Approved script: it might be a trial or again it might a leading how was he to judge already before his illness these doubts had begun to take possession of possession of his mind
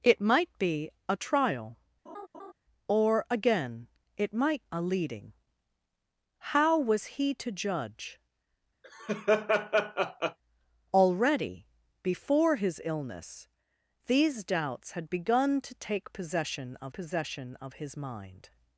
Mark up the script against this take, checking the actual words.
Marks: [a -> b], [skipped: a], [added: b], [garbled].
it might be a trial or again it might a leading how was he to judge already before his illness these doubts had begun to take possession of possession of his mind